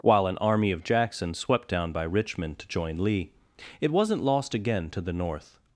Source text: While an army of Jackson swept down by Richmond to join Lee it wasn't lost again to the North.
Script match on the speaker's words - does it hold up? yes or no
yes